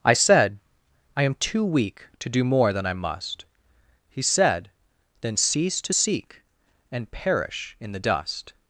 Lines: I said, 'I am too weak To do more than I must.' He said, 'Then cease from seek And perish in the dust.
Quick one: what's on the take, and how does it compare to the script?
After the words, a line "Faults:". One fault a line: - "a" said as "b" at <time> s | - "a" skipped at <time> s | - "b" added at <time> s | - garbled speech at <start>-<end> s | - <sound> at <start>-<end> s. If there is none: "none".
I said, 'I am too weak To do more than I must.' He said, 'Then cease to seek And perish in the dust.
Faults:
- "from" said as "to" at 5.8 s